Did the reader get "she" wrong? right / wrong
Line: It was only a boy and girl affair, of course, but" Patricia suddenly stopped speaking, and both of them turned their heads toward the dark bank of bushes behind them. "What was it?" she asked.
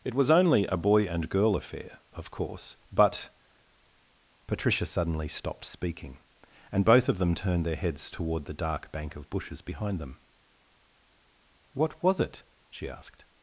right